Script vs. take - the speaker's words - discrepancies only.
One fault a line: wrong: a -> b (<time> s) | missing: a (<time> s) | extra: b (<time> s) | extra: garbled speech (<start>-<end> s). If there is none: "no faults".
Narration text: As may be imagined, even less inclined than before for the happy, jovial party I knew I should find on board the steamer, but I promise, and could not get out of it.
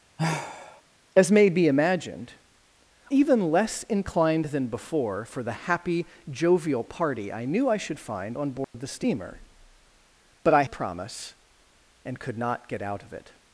no faults